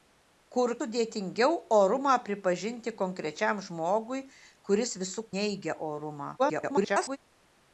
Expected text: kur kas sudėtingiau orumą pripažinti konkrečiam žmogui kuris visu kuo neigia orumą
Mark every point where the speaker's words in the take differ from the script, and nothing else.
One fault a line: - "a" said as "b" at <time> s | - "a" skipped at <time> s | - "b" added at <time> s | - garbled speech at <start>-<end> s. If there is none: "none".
- "kas" skipped at 0.7 s
- "kuo" skipped at 5.3 s
- garbled speech at 6.4-7.2 s